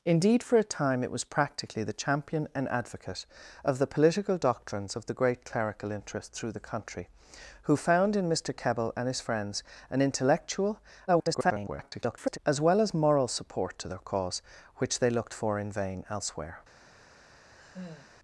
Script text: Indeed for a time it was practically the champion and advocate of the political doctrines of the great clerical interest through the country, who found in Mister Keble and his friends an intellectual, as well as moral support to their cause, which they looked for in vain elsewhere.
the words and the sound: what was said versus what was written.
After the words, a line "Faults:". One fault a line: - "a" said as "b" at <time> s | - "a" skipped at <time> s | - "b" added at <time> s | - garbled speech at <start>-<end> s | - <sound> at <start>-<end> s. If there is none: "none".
Indeed for a time it was practically the champion and advocate of the political doctrines of the great clerical interest through the country, who found in Mister Keble and his friends an intellectual, [garbled] as well as moral support to their cause, which they looked for in vain elsewhere.
Faults:
- garbled speech at 11.1-12.4 s
- sigh at 17.6-18.1 s